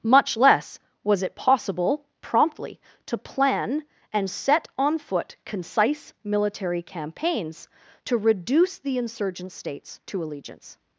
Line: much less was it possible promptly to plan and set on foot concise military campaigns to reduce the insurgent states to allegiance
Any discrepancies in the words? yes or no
no